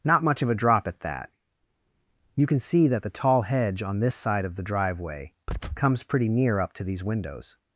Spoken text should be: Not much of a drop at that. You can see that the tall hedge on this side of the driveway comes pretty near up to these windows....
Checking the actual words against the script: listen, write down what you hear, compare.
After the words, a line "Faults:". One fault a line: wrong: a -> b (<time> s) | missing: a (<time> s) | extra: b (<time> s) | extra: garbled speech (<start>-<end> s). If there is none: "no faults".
Not much of a drop at that. You can see that the tall hedge on this side of the driveway comes pretty near up to these windows....
Faults:
no faults